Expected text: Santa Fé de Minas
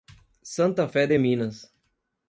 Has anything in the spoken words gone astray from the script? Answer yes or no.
no